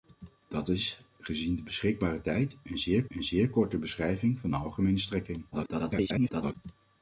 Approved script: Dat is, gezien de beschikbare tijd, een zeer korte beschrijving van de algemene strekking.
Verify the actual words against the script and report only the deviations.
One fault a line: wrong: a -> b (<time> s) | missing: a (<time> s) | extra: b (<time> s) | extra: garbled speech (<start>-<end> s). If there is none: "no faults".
extra: een zeer (3.1 s)
extra: garbled speech (5.5-6.6 s)